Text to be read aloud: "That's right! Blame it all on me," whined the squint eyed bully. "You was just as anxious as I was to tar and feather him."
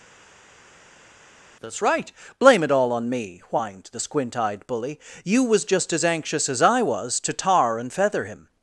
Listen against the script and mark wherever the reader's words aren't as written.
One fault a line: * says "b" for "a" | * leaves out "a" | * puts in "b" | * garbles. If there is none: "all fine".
all fine